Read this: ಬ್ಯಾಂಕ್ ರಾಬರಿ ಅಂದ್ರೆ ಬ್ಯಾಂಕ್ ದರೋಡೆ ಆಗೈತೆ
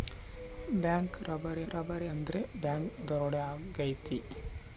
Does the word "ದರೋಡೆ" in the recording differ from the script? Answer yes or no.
no